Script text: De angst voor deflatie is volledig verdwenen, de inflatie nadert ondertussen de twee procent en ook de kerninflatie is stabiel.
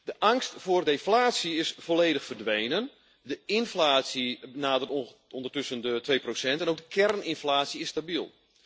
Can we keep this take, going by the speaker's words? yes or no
yes